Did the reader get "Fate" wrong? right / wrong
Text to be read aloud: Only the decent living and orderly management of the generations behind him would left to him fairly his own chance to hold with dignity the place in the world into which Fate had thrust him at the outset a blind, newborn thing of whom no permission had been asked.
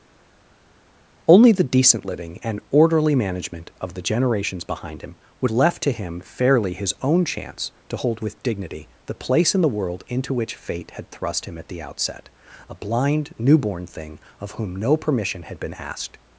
right